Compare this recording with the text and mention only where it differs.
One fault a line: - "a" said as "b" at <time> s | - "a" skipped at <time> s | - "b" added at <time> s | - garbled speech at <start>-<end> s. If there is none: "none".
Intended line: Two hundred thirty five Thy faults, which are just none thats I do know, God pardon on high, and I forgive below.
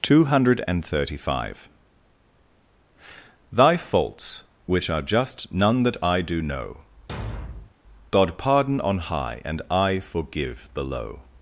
- "thats" said as "that" at 5.8 s